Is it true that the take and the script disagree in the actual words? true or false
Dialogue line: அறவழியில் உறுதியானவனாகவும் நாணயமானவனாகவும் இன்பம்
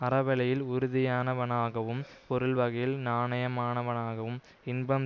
true